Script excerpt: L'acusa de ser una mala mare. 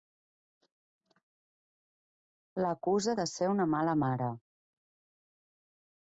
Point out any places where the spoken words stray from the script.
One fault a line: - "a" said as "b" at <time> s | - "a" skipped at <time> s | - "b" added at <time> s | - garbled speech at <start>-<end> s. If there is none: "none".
none